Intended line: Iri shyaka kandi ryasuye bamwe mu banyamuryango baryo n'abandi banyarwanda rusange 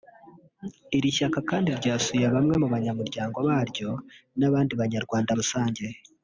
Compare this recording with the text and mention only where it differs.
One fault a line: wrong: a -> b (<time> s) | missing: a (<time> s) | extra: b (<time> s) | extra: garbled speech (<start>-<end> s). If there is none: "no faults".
no faults